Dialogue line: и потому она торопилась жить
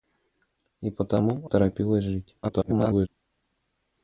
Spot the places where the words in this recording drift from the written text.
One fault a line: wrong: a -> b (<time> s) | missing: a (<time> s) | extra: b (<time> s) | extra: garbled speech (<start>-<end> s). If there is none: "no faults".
missing: она (1.5 s)
extra: garbled speech (2.4-3.1 s)